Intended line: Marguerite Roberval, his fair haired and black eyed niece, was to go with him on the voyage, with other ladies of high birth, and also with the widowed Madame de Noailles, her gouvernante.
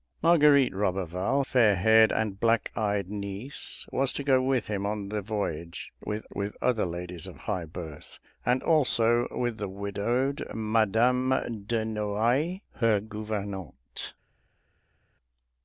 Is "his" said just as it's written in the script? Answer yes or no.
no